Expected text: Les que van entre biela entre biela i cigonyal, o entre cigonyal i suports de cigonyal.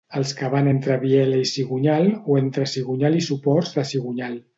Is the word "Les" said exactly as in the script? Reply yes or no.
no